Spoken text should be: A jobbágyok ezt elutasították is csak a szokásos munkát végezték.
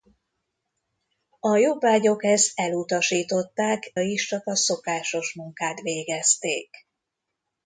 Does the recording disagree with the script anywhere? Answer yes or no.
no